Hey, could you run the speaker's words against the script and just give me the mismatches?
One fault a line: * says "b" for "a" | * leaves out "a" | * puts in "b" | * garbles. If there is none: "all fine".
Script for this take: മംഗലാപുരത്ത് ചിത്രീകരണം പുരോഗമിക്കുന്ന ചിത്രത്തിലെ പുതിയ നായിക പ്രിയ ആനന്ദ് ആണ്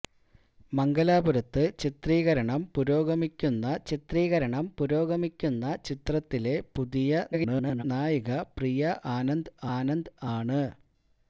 * puts in "ചിത്രീകരണം പുരോഗമിക്കുന്ന"
* garbles
* puts in "ആനന്ദ്"